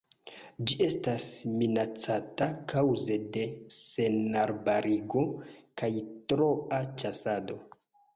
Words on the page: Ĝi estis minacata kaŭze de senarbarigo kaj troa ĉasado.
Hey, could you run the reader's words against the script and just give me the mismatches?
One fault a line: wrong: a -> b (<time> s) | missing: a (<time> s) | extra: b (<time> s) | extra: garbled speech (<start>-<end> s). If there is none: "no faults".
wrong: estis -> estas (0.8 s)